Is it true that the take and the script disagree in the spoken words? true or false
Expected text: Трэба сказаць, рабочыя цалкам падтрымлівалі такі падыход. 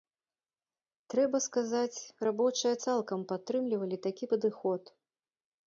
false